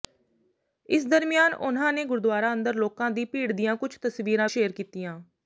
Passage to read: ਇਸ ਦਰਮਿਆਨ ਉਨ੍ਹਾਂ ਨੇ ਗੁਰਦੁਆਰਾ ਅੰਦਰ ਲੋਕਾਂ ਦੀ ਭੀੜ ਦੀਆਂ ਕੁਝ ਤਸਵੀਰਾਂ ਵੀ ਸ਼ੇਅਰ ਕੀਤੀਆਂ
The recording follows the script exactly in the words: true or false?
false